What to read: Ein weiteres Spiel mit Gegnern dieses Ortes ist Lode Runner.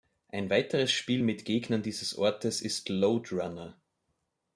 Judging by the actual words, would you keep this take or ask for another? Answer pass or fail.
pass